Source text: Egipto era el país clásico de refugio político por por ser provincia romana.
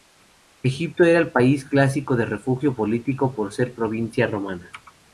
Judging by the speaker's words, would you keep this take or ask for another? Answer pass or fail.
fail